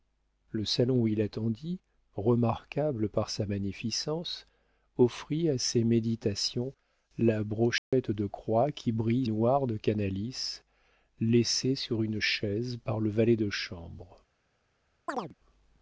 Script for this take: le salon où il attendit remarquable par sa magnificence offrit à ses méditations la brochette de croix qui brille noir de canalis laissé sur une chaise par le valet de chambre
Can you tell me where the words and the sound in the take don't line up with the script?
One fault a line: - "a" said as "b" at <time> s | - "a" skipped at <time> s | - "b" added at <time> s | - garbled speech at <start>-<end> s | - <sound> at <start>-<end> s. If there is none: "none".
- dropout at 7.8-7.9 s
- chirp at 15.1-15.3 s